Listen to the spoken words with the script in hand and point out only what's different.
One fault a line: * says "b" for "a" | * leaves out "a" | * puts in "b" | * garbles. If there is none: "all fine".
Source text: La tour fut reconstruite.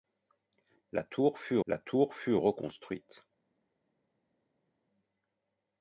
* puts in "la tour fut"